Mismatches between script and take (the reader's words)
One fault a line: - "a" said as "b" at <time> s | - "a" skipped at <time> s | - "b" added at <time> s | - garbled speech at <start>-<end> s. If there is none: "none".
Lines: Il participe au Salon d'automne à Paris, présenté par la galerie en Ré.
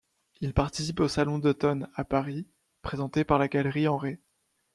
none